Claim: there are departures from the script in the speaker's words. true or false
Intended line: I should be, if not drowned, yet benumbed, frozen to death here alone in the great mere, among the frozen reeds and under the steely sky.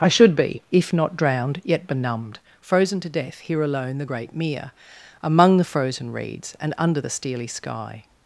true